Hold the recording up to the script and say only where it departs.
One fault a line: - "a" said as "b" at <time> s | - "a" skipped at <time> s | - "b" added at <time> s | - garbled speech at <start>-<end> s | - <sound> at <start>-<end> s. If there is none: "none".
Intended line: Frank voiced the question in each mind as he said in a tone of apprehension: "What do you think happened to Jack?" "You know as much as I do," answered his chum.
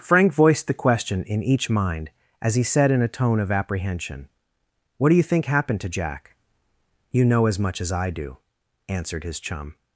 none